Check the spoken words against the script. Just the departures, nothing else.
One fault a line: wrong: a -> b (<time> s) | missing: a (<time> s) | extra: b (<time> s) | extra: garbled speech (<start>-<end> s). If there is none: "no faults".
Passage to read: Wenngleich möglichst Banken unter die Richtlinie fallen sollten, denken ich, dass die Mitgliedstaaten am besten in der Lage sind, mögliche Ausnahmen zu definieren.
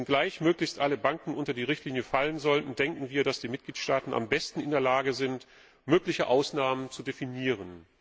extra: alle (0.8 s)
wrong: ich -> wir (3.1 s)